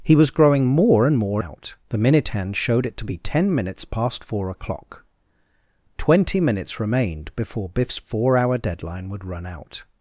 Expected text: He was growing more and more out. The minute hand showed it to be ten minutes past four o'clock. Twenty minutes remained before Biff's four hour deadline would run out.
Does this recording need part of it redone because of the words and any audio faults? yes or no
no